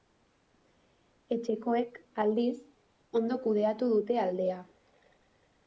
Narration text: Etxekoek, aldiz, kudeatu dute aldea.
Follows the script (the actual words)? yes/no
no